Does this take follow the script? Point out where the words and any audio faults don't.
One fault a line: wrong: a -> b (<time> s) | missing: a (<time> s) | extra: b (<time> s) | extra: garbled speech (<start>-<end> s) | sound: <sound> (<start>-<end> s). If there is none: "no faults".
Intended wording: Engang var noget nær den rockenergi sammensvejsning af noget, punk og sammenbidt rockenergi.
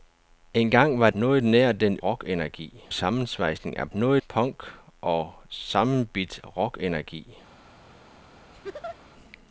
sound: laugh (8.5-9.0 s)